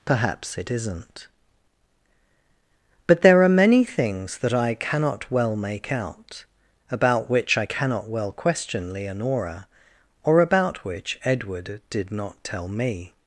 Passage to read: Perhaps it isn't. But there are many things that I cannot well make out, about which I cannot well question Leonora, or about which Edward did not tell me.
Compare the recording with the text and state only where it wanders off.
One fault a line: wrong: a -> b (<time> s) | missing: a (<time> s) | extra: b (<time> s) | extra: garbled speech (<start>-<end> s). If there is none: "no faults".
no faults